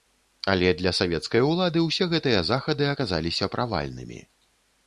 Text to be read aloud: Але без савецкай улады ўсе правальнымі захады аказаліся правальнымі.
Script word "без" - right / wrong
wrong